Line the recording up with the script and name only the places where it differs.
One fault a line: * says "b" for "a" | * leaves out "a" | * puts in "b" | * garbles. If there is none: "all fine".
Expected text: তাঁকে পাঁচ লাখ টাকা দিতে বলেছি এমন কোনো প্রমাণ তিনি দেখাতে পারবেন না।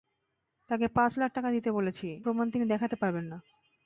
* leaves out "এমন কোনো"